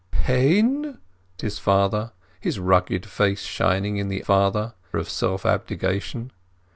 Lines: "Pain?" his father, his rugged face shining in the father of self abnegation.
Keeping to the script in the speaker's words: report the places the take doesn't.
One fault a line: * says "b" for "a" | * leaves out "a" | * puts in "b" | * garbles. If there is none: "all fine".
all fine